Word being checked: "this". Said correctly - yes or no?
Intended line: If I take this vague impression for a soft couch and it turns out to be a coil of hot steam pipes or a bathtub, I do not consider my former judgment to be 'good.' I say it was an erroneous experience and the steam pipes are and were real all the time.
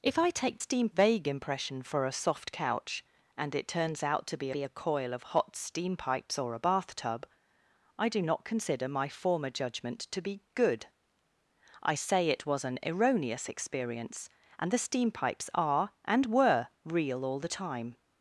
no